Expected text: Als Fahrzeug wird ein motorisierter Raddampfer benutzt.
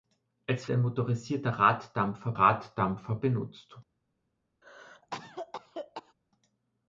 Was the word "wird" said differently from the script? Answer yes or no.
yes